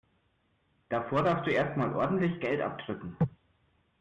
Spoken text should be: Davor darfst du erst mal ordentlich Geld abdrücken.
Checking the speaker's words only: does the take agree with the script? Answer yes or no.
yes